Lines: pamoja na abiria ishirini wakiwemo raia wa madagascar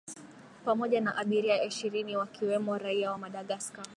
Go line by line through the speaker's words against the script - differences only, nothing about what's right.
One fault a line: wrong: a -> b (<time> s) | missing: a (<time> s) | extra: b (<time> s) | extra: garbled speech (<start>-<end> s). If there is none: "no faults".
no faults